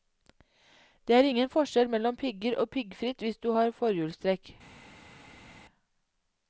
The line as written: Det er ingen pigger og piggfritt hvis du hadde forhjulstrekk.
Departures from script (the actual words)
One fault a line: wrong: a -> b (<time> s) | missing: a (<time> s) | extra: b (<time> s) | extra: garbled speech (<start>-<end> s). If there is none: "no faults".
extra: forskjell mellom (1.5 s)
wrong: hadde -> har (3.5 s)